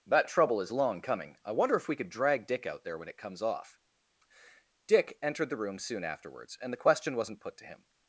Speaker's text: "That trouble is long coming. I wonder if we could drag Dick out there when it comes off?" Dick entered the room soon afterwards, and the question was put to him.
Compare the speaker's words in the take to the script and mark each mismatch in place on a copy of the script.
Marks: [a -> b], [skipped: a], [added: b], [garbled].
"That trouble is long coming. I wonder if we could drag Dick out there when it comes off?" Dick entered the room soon afterwards, and the question [was -> wasn't] put to him.